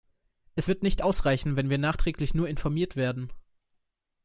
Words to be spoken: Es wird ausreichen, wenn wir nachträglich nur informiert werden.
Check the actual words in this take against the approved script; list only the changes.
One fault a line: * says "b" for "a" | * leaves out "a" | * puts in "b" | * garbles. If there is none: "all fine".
* puts in "nicht"